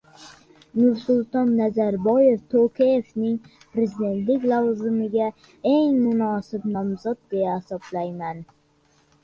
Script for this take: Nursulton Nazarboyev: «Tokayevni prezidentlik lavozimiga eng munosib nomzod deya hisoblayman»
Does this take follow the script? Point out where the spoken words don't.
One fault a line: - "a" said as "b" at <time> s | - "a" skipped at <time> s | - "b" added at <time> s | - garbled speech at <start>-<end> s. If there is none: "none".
none